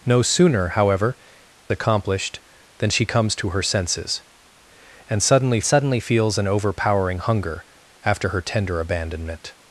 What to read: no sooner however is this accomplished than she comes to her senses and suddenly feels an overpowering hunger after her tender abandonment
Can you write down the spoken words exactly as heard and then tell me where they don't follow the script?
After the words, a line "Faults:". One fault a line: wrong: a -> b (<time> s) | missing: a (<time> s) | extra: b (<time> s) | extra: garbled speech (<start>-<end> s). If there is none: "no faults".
no sooner however accomplished than she comes to her senses and suddenly suddenly feels an overpowering hunger after her tender abandonment
Faults:
missing: is this (1.2 s)
extra: suddenly (5.6 s)